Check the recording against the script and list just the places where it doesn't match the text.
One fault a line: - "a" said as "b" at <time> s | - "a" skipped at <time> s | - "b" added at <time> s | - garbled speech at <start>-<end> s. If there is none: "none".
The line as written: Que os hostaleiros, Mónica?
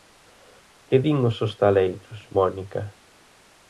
- "din" added at 1.0 s